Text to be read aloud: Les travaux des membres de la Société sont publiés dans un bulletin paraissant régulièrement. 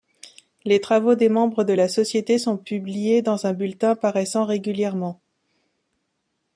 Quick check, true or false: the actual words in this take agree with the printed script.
true